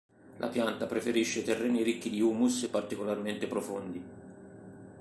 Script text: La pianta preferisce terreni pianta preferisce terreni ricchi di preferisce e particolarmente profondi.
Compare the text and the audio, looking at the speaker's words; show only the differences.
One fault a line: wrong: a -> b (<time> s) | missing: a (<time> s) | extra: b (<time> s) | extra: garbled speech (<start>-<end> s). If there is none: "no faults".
missing: pianta preferisce terreni (1.8 s)
wrong: preferisce -> humus (2.2 s)